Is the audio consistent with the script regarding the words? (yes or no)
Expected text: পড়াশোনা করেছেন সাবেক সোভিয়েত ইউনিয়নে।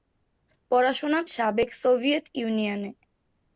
no